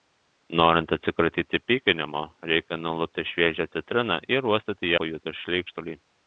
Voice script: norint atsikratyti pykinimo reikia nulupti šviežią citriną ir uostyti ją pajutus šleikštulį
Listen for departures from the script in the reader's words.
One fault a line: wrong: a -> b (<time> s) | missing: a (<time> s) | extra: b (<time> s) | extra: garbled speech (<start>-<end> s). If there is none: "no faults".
missing: ją (5.0 s)